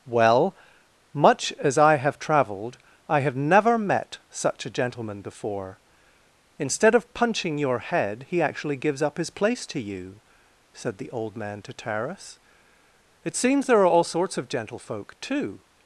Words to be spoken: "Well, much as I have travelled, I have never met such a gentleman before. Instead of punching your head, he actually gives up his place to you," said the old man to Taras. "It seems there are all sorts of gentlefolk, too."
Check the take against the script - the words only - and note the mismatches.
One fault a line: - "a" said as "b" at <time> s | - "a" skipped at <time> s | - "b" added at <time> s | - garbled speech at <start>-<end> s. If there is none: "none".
none